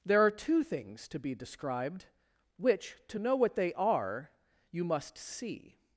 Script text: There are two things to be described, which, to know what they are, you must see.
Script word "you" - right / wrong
right